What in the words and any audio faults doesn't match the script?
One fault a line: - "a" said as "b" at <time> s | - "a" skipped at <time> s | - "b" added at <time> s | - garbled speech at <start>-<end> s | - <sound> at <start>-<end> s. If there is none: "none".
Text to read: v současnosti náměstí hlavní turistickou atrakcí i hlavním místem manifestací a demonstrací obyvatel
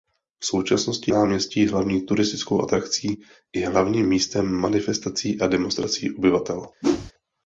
- whoosh at 6.8-7.1 s